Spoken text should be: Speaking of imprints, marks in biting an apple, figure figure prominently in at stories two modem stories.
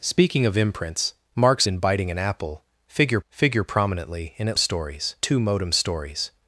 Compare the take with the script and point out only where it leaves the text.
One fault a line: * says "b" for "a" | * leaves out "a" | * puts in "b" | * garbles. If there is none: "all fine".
all fine